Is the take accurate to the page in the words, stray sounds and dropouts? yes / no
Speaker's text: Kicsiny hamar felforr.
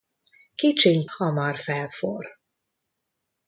yes